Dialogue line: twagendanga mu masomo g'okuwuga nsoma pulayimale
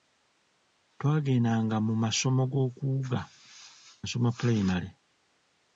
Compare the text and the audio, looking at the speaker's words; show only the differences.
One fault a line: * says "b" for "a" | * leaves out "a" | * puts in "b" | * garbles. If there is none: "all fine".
all fine